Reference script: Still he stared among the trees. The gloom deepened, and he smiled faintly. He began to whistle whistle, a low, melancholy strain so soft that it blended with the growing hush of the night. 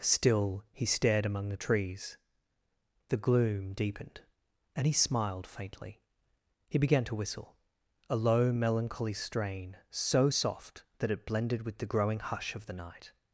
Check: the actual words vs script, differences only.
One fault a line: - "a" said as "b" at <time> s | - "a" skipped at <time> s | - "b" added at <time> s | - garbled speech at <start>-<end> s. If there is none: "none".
- "whistle" skipped at 7.5 s